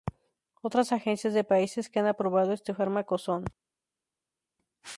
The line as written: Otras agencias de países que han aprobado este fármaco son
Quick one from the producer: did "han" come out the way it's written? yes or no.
yes